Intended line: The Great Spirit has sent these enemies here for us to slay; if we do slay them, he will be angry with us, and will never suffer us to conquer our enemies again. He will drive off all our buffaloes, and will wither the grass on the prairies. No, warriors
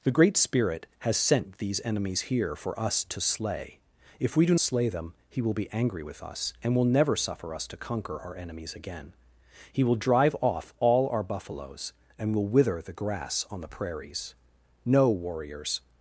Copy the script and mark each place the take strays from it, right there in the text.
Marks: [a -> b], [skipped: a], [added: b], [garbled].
The Great Spirit has sent these enemies here for us to slay; if we do slay them, he will be angry with us, and will never suffer us to conquer our enemies again. He will drive off all our buffaloes, and will wither the grass on the prairies. No, warriors